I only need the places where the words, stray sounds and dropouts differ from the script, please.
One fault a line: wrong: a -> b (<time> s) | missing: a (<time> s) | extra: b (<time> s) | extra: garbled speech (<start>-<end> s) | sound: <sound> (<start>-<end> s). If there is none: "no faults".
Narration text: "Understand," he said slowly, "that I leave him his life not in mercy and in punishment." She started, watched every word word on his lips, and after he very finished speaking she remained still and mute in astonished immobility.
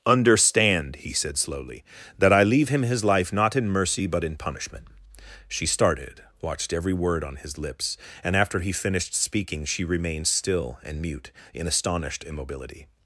wrong: and -> but (4.1 s)
missing: word (7.2 s)
missing: very (8.7 s)